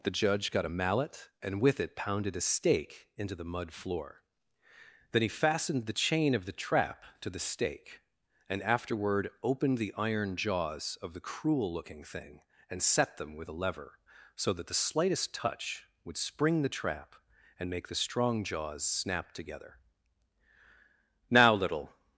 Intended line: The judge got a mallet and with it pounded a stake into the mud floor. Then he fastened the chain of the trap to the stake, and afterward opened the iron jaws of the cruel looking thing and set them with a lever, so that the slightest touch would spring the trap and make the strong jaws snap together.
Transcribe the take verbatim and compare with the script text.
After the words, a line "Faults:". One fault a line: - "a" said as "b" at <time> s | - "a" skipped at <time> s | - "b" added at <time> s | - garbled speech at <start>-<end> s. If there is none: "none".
The judge got a mallet and with it pounded a stake into the mud floor. Then he fastened the chain of the trap to the stake, and afterward opened the iron jaws of the cruel looking thing and set them with a lever, so that the slightest touch would spring the trap and make the strong jaws snap together. "Now, little
Faults:
- "Now little" added at 21.3 s